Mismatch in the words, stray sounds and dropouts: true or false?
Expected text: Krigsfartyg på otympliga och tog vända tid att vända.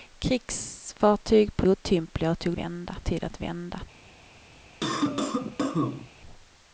true